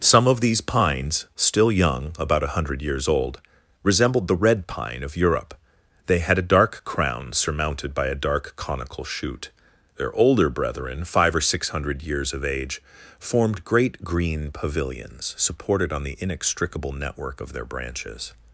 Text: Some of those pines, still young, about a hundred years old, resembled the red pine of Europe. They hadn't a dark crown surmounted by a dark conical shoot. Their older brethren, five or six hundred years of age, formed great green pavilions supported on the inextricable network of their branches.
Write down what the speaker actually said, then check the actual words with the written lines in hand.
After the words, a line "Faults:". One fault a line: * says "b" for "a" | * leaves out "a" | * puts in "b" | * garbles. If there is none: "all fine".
Some of these pines, still young, about a hundred years old, resembled the red pine of Europe. They had a dark crown surmounted by a dark conical shoot. Their older brethren, five or six hundred years of age, formed great green pavilions supported on the inextricable network of their branches.
Faults:
* says "these" for "those"
* says "had" for "hadn't"